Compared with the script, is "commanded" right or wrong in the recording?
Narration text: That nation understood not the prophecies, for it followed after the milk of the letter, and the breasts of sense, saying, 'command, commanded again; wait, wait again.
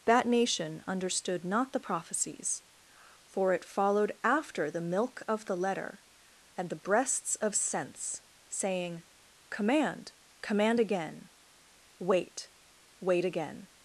wrong